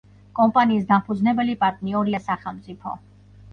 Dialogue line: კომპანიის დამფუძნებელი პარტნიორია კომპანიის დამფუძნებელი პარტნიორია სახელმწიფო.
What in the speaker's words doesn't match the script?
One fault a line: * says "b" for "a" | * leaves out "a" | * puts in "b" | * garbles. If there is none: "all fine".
* leaves out "კომპანიის დამფუძნებელი პარტნიორია"